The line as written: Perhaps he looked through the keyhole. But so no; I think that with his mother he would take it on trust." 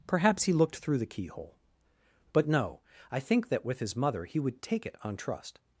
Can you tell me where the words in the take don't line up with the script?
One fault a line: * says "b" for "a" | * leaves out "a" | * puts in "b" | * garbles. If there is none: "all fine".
* leaves out "so"